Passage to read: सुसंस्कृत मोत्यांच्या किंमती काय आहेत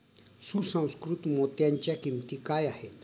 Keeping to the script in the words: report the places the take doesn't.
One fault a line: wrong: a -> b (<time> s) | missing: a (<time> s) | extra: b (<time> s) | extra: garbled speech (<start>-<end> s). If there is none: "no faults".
no faults